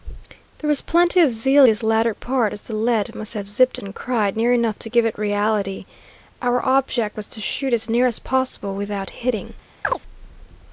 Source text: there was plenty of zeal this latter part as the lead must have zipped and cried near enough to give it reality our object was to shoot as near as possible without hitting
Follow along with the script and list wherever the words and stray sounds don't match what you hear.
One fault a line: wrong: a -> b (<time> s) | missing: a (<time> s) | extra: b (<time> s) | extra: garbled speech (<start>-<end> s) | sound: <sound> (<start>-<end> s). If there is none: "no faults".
sound: chirp (9.8-10.0 s)